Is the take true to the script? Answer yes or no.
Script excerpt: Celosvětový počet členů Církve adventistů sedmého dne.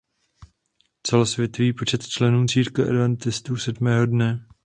yes